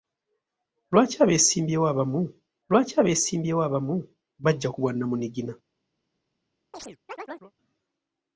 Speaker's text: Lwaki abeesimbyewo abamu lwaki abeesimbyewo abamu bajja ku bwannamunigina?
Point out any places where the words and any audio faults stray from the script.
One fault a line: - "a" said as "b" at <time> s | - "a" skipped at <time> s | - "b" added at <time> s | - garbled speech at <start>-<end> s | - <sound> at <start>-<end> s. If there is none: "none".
- chirp at 6.7-7.5 s